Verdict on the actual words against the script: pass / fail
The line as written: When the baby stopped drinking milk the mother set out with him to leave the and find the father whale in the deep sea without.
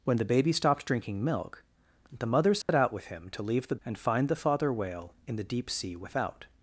pass